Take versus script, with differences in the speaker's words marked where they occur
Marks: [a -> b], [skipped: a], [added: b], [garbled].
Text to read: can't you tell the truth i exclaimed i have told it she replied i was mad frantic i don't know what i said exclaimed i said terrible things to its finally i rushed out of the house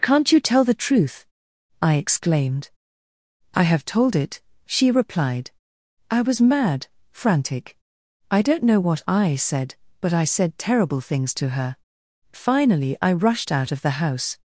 can't you tell the truth i exclaimed i have told it she replied i was mad frantic i don't know what i said [exclaimed -> but] i said terrible things to [its -> her] finally i rushed out of the house